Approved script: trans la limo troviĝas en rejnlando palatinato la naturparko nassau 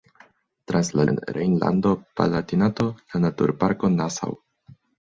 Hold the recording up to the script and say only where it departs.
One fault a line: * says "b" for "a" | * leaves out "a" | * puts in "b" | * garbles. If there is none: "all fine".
* leaves out "limo troviĝas"